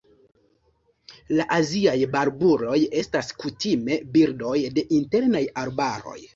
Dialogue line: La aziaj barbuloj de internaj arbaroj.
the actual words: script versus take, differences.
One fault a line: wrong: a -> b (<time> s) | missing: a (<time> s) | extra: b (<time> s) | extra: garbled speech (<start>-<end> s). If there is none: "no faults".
extra: estas kutime birdoj (3.0 s)